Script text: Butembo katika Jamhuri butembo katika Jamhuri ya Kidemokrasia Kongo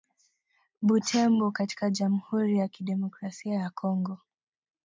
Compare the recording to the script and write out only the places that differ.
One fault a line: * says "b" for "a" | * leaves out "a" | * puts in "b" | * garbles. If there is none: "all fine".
* says "ya Kidemokrasia" for "butembo katika Jamhuri"
* leaves out "Kidemokrasia"